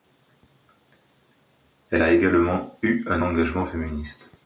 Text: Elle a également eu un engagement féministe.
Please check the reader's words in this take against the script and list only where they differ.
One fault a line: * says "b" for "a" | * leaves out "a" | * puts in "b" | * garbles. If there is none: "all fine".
all fine